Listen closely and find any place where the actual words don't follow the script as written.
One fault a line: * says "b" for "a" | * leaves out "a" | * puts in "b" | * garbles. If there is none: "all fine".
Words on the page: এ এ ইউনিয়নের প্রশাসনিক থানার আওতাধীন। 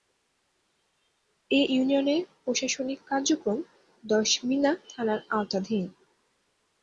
* leaves out "এ"
* puts in "কার্যক্রম দশমিনা"